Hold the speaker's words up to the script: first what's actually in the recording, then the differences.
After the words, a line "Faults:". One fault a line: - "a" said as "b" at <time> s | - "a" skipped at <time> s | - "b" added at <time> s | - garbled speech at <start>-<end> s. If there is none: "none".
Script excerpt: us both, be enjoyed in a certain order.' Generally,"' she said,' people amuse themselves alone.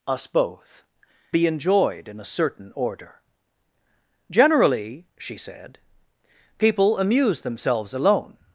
us both, be enjoyed in a certain order.' Generally,"' she said,' people amuse themselves alone.
Faults:
none